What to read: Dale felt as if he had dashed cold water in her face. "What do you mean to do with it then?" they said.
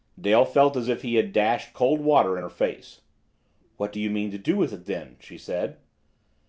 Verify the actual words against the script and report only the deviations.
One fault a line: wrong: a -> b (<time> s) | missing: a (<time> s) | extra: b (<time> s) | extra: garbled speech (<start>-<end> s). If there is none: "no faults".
wrong: they -> she (5.2 s)